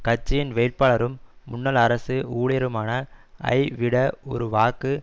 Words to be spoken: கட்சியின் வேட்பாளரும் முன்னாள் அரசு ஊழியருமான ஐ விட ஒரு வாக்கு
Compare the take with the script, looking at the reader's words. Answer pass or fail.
pass